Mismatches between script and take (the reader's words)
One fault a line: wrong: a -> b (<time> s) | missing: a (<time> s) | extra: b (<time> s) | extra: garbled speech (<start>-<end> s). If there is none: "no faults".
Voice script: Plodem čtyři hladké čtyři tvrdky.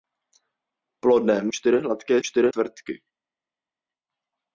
no faults